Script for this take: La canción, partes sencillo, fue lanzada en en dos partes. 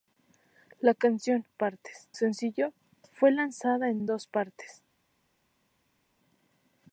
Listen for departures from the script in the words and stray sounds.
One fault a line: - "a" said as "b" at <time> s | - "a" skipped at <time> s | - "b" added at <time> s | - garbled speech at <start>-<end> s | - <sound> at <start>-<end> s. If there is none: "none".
none